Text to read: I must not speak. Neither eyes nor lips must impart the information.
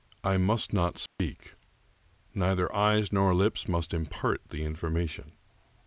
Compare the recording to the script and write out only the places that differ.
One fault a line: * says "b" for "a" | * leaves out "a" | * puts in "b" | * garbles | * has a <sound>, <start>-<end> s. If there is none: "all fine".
* has a dropout, 1.1-1.2 s